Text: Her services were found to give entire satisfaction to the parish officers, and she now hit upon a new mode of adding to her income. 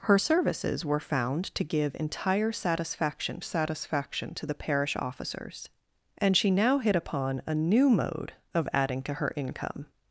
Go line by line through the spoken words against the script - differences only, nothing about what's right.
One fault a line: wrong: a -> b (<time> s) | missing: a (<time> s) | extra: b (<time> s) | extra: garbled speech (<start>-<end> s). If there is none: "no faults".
extra: satisfaction (3.4 s)